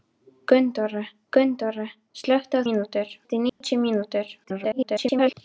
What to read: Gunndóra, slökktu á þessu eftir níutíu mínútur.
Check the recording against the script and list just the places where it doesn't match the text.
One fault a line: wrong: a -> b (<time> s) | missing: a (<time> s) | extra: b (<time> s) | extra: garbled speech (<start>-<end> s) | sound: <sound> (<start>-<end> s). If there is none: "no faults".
extra: gunndóra (1.4 s)
wrong: þessu -> mínútur (2.7 s)
sound: dropout (3.5-3.6 s)
extra: garbled speech (4.4-5.3 s)